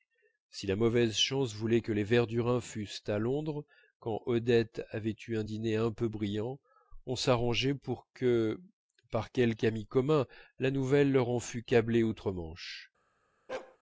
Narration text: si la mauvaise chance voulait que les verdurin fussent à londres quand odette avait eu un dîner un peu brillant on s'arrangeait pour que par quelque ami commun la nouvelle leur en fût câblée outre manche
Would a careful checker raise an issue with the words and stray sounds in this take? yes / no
yes